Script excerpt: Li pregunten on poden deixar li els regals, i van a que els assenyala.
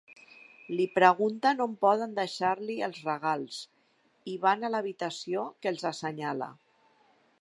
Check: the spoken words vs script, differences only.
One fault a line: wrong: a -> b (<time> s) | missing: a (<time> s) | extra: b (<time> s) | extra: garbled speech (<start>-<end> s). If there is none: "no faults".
extra: l'habitació (4.8 s)